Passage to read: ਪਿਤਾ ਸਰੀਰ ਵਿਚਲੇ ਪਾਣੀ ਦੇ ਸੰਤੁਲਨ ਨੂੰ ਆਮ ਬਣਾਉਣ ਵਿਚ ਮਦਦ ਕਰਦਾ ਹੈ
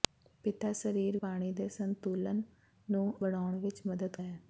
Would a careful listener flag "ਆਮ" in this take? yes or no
yes